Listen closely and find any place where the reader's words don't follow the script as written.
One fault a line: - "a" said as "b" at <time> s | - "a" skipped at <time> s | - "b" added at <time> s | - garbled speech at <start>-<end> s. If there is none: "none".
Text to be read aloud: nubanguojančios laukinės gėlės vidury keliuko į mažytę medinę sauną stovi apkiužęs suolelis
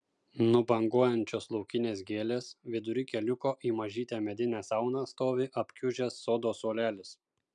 - "sodo" added at 6.3 s